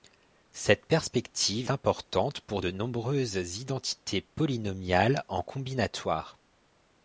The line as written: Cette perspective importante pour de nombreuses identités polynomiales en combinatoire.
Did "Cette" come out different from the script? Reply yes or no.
no